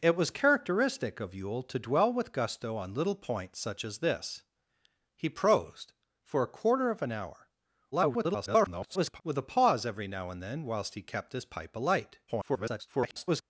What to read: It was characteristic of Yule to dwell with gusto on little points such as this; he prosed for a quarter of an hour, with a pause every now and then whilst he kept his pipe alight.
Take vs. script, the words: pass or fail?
fail